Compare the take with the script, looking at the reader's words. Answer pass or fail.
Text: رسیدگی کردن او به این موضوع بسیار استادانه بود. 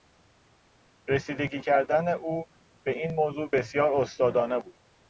pass